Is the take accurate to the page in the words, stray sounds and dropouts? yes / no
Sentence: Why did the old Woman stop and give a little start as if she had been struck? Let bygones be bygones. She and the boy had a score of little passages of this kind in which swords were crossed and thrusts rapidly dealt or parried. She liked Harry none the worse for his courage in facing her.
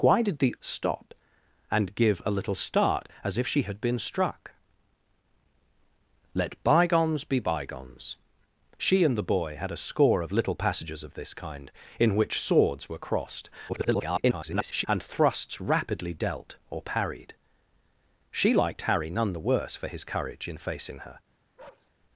no